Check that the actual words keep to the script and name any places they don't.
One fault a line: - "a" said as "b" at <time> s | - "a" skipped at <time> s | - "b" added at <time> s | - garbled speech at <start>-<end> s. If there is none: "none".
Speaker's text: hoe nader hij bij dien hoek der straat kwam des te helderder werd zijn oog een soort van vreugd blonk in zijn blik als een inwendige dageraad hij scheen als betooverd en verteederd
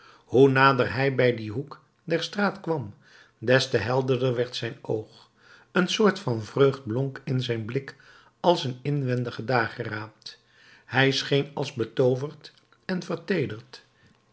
none